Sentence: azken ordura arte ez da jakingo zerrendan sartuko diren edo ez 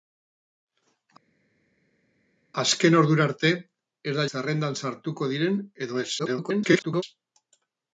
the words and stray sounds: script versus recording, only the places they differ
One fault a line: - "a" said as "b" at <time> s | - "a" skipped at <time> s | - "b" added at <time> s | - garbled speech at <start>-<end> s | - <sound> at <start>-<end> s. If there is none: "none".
- "jakingo" skipped at 4.3 s
- garbled speech at 6.2-7.0 s